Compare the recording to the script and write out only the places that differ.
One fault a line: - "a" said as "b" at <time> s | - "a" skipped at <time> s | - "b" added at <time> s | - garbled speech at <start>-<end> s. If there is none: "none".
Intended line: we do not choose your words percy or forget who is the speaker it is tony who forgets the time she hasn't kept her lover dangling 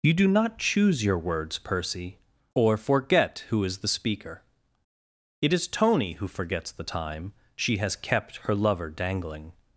- "we" said as "you" at 0.0 s
- "hasn't" said as "has" at 7.8 s